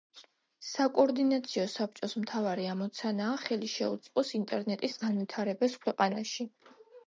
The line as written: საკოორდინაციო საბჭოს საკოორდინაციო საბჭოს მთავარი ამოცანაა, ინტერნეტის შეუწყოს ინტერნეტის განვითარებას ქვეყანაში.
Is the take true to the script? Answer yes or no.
no